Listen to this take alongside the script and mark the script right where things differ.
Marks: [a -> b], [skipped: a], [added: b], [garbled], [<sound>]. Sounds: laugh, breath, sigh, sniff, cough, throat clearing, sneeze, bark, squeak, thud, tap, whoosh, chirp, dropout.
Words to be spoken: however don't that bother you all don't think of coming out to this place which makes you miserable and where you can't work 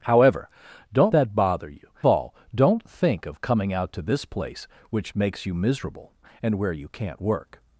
however don't that bother you all don't think of coming out to this place which makes you miserable and where you can't work